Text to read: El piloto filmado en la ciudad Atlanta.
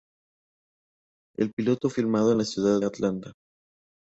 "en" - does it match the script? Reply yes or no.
yes